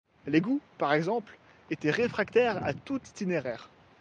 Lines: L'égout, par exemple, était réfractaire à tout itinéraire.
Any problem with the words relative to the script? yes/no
no